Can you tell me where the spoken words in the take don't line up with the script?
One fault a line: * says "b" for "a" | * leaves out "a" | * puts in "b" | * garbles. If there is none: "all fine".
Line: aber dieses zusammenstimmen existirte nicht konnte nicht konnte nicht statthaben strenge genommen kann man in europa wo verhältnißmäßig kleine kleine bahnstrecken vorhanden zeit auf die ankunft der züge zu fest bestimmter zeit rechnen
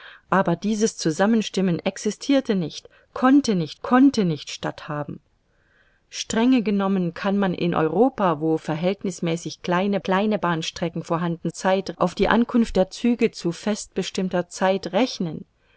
all fine